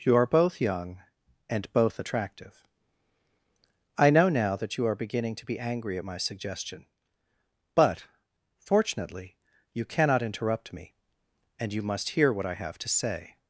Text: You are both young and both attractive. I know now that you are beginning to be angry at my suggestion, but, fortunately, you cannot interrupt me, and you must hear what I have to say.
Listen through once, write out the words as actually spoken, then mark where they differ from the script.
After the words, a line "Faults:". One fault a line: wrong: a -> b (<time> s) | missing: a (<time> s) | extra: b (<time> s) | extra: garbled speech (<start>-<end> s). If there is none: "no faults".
You are both young and both attractive. I know now that you are beginning to be angry at my suggestion, but, fortunately, you cannot interrupt me, and you must hear what I have to say.
Faults:
no faults